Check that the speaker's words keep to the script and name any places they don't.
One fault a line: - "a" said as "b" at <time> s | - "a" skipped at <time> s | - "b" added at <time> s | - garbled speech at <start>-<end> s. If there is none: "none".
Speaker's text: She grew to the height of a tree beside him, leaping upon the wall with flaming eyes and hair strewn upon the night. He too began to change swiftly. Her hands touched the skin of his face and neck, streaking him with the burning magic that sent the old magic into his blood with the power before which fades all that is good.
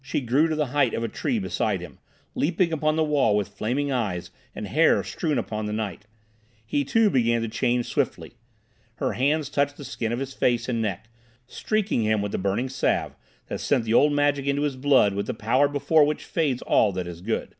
- "magic" said as "salve" at 12.7 s